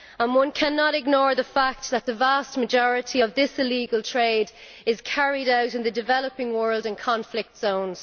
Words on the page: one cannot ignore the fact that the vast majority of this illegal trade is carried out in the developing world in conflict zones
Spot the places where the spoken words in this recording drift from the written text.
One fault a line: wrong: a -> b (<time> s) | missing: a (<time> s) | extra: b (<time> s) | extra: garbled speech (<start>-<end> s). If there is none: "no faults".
no faults